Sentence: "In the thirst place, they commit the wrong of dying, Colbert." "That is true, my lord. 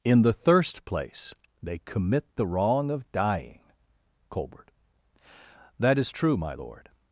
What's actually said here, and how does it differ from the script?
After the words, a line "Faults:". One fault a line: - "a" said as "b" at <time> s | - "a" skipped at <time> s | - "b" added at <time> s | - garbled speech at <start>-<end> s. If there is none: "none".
"In the thirst place, they commit the wrong of dying, Colbert." "That is true, my lord.
Faults:
none